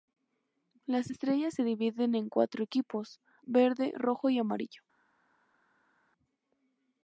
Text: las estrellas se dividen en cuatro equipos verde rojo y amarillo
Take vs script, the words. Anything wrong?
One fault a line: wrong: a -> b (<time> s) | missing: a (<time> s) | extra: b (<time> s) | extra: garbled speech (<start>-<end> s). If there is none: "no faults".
no faults